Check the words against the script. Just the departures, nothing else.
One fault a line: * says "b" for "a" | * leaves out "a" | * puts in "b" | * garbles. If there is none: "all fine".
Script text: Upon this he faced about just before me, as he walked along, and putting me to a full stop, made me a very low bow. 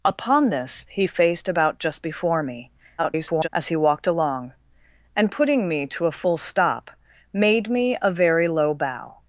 * garbles